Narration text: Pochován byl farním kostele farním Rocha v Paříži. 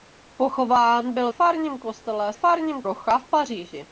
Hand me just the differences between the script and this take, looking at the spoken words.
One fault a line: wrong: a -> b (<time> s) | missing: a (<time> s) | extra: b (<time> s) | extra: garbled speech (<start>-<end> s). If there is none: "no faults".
no faults